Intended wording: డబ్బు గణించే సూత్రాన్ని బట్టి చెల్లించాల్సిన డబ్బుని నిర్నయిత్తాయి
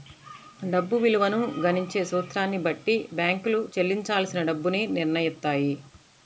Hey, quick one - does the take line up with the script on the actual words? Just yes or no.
no